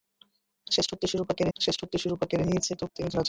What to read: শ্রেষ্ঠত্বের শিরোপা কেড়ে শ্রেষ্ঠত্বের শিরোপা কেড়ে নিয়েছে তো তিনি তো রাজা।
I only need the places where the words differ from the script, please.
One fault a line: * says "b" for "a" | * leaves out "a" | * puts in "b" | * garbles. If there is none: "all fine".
all fine